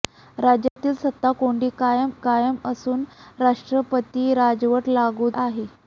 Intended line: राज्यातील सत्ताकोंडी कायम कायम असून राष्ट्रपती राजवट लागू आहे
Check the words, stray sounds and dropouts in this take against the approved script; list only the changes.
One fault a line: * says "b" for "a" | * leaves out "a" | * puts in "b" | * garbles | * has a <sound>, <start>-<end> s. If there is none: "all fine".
* has a dropout, 0.7-0.8 s